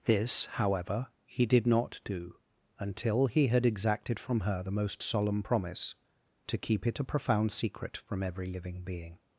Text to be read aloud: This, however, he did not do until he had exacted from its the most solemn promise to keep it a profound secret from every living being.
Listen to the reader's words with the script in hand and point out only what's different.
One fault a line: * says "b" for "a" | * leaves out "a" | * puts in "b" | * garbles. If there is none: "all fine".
* says "her" for "its"